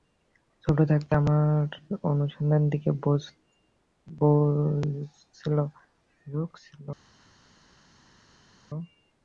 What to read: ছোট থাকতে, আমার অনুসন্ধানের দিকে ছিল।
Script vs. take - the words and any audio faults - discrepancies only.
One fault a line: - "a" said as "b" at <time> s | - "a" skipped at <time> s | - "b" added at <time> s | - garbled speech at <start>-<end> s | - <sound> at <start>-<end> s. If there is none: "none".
- "ঝোঁক" added at 6.3 s